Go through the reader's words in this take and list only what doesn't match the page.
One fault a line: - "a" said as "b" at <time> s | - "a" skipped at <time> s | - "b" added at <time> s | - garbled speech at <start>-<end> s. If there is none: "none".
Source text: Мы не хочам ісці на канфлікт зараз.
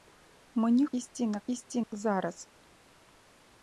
- "хочам" skipped at 0.8 s
- "канфлікт" said as "ісці" at 1.5 s